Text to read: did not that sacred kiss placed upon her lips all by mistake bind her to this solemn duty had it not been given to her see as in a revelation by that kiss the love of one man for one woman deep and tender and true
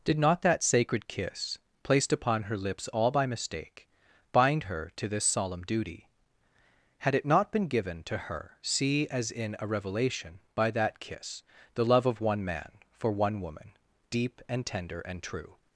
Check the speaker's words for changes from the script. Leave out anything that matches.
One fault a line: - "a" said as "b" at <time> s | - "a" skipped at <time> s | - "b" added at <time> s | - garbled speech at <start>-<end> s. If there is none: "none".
none